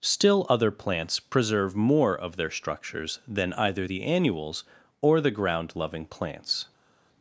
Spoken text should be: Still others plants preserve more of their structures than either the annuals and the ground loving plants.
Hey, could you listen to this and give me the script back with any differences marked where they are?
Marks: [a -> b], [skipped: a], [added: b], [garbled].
Still [others -> other] plants preserve more of their structures than either the annuals [and -> or] the ground loving plants.